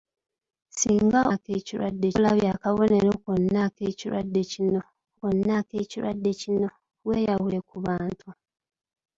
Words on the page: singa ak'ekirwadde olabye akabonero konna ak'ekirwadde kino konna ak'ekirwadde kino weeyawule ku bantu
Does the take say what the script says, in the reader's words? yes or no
yes